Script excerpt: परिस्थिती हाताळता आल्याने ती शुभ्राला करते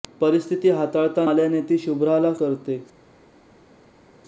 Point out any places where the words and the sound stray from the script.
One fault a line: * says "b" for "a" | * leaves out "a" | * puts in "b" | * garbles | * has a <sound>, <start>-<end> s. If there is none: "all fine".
all fine